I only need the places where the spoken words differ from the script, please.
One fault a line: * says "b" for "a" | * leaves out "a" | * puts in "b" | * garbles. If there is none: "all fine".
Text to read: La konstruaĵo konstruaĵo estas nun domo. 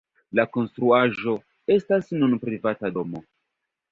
* leaves out "konstruaĵo"
* puts in "privata"